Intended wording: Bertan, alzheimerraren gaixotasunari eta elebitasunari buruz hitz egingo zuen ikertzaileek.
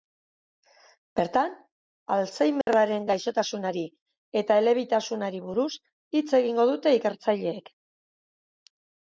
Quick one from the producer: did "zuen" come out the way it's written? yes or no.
no